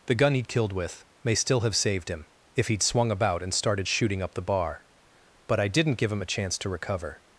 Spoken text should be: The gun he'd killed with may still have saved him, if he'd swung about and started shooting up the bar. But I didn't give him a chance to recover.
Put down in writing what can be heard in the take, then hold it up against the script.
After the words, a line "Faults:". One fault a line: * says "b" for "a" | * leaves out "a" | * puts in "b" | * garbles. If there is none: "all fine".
The gun he'd killed with may still have saved him, if he'd swung about and started shooting up the bar. But I didn't give him a chance to recover.
Faults:
all fine